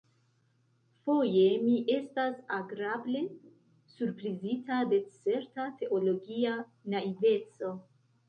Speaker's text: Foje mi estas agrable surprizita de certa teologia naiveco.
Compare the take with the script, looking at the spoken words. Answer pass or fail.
pass